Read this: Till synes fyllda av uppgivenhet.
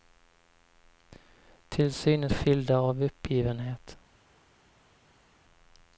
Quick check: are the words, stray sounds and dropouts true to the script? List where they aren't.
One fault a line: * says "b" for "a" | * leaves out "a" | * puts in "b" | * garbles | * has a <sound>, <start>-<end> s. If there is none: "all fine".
all fine